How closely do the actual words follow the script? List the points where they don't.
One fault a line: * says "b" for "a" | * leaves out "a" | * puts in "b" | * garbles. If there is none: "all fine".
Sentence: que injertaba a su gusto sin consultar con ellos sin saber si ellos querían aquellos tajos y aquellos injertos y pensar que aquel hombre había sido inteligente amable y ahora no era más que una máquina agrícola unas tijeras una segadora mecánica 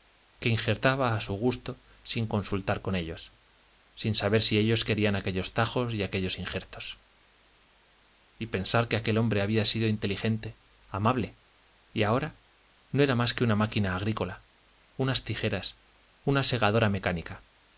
all fine